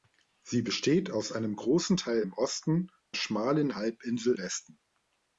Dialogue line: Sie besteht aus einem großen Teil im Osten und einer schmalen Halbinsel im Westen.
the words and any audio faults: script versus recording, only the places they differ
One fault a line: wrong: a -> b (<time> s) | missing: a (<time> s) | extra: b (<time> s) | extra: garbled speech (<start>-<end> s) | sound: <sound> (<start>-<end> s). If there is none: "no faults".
missing: und einer (2.9 s)
missing: im (4.4 s)